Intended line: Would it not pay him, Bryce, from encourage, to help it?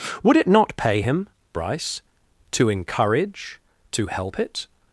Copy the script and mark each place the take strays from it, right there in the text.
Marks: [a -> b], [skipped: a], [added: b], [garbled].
Would it not pay him, Bryce, [from -> to] encourage, to help it?